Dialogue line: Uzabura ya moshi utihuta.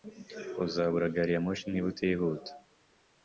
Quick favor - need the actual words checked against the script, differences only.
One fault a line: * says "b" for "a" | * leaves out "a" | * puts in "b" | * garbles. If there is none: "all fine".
* puts in "gari"
* puts in "niba"